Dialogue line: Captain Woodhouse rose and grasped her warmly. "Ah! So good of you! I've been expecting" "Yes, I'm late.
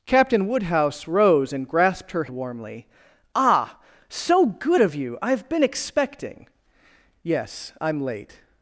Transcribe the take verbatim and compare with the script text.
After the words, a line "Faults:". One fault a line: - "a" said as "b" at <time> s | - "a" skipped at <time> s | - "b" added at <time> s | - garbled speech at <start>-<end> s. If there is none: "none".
Captain Woodhouse rose and grasped her warmly. "Ah! So good of you! I've been expecting" "Yes, I'm late.
Faults:
none